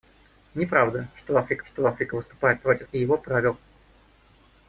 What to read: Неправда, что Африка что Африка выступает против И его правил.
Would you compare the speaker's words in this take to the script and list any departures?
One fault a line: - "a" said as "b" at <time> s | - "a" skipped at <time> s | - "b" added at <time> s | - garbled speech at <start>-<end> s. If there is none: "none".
none